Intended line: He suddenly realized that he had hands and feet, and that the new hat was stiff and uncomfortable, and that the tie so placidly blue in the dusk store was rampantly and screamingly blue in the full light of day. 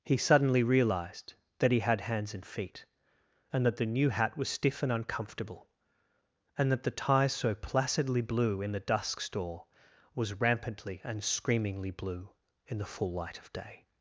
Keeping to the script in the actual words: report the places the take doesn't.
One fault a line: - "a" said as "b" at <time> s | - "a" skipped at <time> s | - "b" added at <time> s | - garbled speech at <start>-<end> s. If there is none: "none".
none